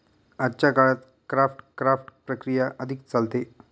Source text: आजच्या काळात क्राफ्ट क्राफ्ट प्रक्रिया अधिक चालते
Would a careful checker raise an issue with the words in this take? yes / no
no